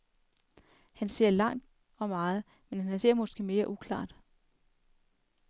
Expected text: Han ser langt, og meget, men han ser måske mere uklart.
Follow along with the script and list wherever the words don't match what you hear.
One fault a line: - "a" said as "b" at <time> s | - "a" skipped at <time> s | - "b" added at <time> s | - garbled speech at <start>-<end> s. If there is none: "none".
none